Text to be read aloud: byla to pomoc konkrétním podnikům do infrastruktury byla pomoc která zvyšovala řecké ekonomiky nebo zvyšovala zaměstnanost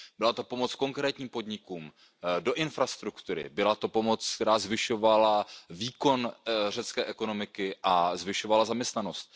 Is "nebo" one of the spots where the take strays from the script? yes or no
yes